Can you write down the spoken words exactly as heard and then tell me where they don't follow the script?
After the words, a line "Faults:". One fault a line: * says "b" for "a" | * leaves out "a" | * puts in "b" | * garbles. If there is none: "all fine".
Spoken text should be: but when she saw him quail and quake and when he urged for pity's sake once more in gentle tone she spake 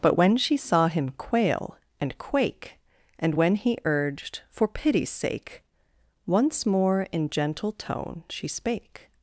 but when she saw him quail and quake and when he urged for pity's sake once more in gentle tone she spake
Faults:
all fine